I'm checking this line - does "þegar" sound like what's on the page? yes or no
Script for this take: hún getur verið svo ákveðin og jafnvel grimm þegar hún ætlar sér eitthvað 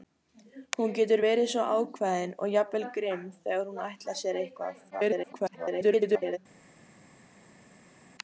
yes